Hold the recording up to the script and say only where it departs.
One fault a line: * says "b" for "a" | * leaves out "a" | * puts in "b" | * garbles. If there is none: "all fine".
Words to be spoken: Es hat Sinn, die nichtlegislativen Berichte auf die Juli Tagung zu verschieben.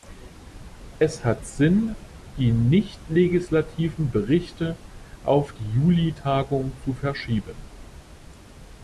all fine